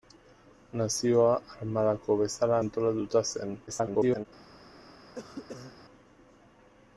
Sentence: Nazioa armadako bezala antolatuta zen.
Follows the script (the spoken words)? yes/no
no